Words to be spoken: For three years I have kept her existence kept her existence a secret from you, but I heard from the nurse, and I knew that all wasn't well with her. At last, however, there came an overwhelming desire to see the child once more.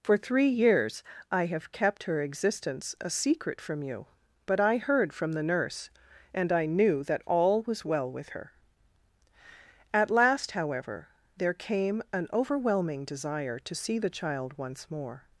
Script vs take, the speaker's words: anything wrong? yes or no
yes